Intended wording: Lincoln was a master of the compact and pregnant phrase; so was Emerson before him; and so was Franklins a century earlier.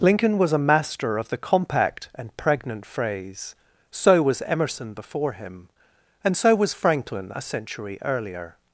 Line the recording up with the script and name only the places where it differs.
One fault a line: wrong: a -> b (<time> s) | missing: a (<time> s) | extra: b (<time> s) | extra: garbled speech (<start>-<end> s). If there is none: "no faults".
wrong: Franklins -> Franklin (6.7 s)